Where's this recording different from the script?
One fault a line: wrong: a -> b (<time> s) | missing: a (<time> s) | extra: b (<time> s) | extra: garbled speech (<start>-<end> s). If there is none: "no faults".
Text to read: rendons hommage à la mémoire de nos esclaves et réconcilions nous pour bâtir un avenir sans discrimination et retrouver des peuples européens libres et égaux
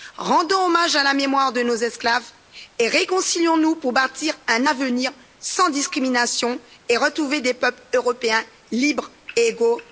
no faults